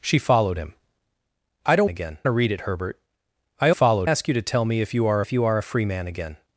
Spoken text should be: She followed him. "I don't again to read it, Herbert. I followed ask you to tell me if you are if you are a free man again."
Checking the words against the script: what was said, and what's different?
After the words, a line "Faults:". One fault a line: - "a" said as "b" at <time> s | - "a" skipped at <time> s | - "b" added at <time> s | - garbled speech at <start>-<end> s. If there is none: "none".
She followed him. "I don't again to read it, Herbert. I followed ask you to tell me if you are if you are a free man again."
Faults:
none